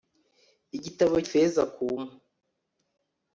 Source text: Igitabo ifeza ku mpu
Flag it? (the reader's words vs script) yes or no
no